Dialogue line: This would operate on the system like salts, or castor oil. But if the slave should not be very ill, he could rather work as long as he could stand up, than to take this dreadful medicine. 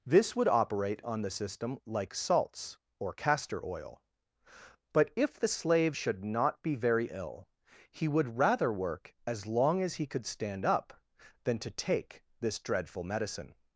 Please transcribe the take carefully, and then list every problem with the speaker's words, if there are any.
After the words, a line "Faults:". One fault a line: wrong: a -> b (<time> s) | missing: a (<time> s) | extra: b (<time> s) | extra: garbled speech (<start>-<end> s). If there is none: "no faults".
This would operate on the system like salts, or castor oil. But if the slave should not be very ill, he would rather work as long as he could stand up, than to take this dreadful medicine.
Faults:
wrong: could -> would (8.1 s)